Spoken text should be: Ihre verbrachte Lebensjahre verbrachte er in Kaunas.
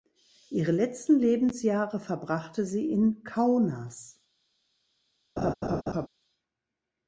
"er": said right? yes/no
no